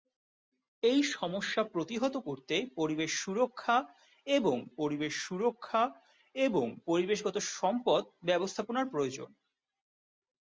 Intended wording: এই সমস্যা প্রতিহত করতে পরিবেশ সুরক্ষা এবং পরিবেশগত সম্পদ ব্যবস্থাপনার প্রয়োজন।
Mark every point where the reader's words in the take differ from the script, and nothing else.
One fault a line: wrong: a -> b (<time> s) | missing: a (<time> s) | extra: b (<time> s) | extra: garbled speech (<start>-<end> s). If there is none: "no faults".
extra: পরিবেশ সুরক্ষা এবং (4.8 s)